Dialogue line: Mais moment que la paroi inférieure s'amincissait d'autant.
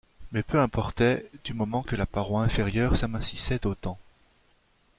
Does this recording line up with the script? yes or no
no